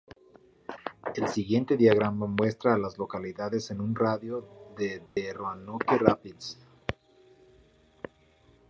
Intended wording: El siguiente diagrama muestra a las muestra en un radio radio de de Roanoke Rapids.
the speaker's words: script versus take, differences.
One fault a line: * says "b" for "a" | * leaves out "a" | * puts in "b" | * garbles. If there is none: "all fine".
* says "localidades" for "muestra"
* leaves out "radio"